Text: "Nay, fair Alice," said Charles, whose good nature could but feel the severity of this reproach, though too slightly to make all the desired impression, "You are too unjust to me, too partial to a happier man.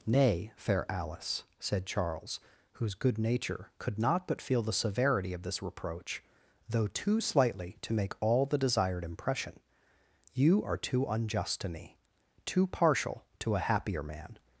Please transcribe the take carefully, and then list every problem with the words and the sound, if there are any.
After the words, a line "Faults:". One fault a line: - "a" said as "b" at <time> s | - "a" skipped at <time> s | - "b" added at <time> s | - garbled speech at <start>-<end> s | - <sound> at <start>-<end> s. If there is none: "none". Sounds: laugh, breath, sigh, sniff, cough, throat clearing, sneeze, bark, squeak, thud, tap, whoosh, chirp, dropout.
"Nay, fair Alice," said Charles, whose good nature could not but feel the severity of this reproach, though too slightly to make all the desired impression, "You are too unjust to me, too partial to a happier man.
Faults:
- "not" added at 4.0 s